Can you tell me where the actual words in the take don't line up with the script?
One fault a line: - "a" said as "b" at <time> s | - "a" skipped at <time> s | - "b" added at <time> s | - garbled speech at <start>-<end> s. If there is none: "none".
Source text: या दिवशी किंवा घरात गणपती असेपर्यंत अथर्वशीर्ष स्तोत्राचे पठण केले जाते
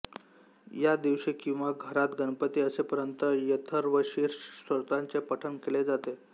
none